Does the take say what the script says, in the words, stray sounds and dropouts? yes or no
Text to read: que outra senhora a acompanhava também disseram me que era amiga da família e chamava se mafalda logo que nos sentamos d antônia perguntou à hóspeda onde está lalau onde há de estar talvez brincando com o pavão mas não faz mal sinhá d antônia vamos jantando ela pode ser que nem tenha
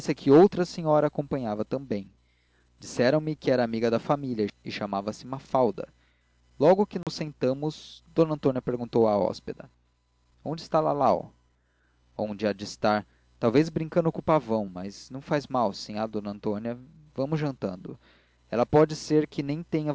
no